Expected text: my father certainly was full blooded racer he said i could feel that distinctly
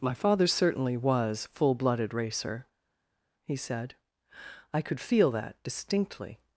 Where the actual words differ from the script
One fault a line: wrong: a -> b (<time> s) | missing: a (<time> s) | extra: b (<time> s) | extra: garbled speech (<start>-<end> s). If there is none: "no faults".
no faults